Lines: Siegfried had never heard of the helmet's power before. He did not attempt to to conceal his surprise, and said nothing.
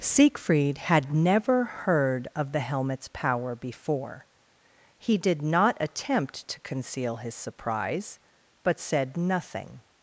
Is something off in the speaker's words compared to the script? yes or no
yes